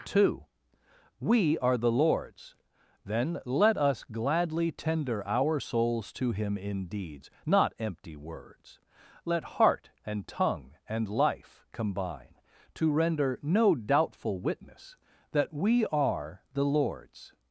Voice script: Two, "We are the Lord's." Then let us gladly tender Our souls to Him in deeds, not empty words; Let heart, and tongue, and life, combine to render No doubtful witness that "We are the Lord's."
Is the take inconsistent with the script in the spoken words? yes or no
no